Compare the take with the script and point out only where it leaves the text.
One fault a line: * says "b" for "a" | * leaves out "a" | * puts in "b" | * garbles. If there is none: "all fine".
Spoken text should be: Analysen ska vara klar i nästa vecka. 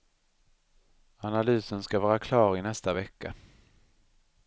all fine